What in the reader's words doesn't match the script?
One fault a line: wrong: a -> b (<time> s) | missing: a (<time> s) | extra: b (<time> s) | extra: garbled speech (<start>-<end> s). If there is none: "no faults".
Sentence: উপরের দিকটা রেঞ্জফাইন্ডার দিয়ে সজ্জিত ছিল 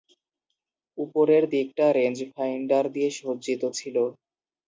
no faults